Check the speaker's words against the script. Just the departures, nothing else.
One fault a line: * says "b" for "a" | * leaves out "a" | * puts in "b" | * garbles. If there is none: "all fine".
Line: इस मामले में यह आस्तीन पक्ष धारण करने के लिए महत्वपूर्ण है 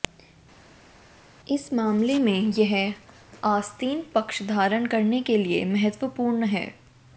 all fine